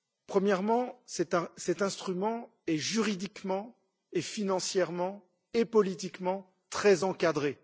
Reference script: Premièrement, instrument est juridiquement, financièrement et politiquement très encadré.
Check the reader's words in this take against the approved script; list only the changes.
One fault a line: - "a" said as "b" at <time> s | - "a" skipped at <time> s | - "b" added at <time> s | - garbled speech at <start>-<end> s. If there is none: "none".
- "cet" added at 1.1 s